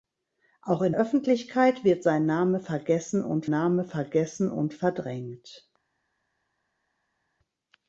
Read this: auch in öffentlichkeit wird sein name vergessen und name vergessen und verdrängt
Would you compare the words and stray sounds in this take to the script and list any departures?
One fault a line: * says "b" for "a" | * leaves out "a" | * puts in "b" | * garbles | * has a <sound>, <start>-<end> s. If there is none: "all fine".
all fine